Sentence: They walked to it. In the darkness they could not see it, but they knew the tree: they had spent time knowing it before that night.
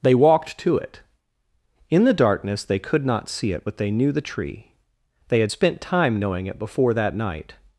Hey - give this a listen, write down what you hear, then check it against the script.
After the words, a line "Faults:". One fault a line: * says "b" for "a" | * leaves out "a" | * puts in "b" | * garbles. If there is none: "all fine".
They walked to it. In the darkness they could not see it, but they knew the tree: they had spent time knowing it before that night.
Faults:
all fine